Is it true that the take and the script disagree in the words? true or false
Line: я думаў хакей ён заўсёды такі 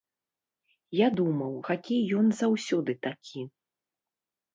false